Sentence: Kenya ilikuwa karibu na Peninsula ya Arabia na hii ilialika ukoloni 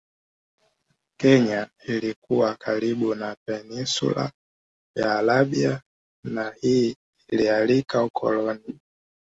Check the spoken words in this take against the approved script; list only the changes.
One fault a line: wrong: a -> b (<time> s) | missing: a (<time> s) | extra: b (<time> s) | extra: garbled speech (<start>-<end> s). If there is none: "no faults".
no faults